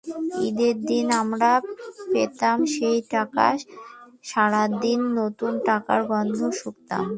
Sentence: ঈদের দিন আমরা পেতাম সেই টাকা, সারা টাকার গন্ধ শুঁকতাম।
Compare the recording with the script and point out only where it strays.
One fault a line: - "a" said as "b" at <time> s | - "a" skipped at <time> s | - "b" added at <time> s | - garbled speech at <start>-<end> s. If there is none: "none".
- "দিন নতুন" added at 4.8 s